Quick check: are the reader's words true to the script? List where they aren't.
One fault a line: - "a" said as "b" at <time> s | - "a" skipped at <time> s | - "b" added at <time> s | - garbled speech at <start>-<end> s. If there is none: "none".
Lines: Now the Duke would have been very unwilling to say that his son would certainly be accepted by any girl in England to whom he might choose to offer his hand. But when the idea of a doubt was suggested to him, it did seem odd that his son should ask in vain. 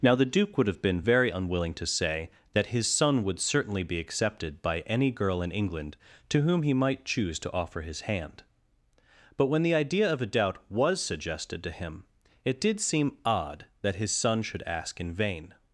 none